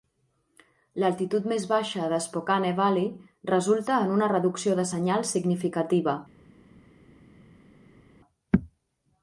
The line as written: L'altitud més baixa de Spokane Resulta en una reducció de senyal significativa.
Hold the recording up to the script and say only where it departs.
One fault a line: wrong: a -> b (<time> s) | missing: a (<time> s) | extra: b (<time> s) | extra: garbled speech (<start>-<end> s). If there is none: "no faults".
extra: Valley (2.8 s)